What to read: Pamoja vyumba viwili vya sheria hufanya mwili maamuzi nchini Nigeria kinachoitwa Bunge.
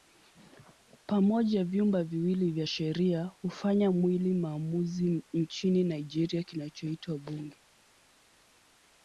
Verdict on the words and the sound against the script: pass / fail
pass